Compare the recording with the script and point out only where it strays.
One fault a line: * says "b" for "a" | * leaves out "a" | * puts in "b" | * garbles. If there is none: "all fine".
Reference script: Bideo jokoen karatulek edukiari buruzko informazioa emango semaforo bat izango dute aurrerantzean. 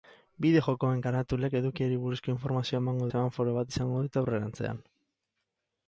all fine